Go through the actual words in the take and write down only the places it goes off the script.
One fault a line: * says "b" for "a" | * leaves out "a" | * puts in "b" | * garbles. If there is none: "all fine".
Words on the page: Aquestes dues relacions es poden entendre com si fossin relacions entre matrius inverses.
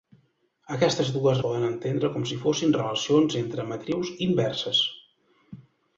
* leaves out "relacions es"